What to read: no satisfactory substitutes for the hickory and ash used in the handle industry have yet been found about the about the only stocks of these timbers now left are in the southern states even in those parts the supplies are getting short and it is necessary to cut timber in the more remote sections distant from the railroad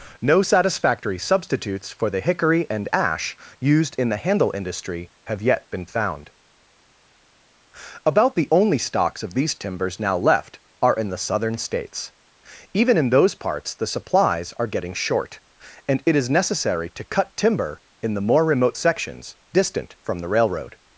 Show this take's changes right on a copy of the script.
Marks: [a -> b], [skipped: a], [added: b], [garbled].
no satisfactory substitutes for the hickory and ash used in the handle industry have yet been found about the [skipped: about the] only stocks of these timbers now left are in the southern states even in those parts the supplies are getting short and it is necessary to cut timber in the more remote sections distant from the railroad